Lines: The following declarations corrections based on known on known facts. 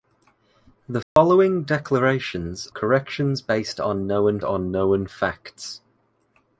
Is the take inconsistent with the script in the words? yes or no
no